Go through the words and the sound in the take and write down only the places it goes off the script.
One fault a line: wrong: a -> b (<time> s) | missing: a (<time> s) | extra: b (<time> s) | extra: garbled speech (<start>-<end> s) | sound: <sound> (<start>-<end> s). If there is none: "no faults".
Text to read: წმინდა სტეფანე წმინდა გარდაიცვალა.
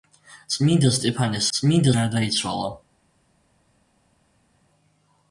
no faults